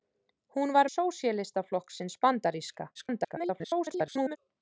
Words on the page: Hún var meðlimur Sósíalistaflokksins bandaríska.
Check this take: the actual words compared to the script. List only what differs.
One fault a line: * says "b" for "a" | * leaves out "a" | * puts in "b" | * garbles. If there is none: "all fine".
* leaves out "meðlimur"
* garbles